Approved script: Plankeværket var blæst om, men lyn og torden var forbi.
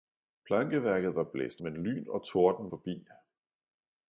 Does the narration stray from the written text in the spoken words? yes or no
yes